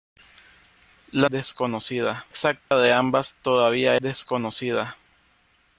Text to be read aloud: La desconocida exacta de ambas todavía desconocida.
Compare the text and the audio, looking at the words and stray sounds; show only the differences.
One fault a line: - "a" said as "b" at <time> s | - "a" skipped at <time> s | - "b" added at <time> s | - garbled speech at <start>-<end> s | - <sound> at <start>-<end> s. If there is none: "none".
- dropout at 2.7-2.7 s